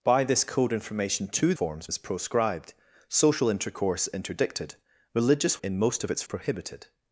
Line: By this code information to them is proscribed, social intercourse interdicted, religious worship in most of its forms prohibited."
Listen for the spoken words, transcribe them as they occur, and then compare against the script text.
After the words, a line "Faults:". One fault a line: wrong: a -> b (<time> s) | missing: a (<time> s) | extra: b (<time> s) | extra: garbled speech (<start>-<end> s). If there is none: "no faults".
By this code information to forms is proscribed, social intercourse interdicted, religious in most of its prohibited."
Faults:
wrong: them -> forms (1.5 s)
missing: worship (5.6 s)
missing: forms (6.2 s)